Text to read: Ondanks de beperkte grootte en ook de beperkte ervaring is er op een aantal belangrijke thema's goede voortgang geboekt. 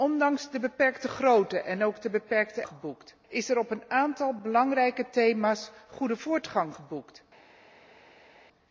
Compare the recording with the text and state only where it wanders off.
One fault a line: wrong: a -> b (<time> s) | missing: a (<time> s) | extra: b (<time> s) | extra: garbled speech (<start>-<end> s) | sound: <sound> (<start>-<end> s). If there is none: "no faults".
wrong: ervaring -> geboekt (2.7 s)